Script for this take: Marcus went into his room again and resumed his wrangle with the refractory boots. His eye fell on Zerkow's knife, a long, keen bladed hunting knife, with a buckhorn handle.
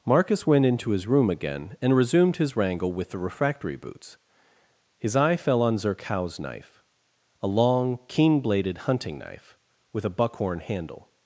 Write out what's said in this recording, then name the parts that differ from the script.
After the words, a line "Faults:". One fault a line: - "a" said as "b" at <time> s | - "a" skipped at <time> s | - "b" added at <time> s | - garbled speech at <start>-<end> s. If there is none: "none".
Marcus went into his room again and resumed his wrangle with the refractory boots. His eye fell on Zerkow's knife, a long, keen bladed hunting knife, with a buckhorn handle.
Faults:
none